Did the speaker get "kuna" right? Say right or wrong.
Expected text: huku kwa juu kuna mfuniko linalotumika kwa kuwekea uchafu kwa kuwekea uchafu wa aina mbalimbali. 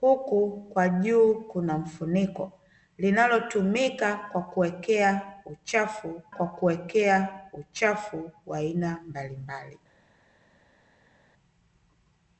right